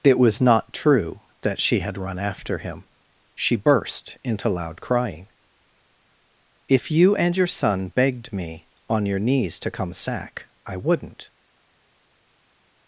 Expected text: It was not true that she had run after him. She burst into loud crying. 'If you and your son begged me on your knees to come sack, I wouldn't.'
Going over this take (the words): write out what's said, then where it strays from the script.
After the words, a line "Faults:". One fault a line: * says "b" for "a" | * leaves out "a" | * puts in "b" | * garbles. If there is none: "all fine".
It was not true that she had run after him. She burst into loud crying. 'If you and your son begged me on your knees to come sack, I wouldn't.'
Faults:
all fine